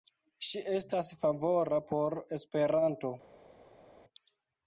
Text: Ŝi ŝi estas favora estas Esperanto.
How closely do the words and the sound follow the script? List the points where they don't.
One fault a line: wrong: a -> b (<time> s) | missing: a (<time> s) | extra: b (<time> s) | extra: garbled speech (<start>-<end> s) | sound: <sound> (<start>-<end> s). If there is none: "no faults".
missing: ŝi (0.6 s)
wrong: estas -> por (1.9 s)